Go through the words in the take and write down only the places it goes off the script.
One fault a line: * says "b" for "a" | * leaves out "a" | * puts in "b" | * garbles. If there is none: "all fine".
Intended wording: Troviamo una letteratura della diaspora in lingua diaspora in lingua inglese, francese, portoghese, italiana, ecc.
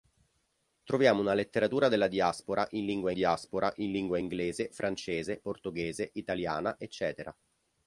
all fine